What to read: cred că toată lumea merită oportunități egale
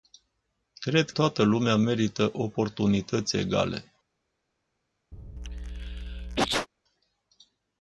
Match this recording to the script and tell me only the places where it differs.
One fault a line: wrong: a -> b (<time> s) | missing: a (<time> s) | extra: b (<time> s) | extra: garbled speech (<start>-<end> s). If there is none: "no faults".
missing: că (1.1 s)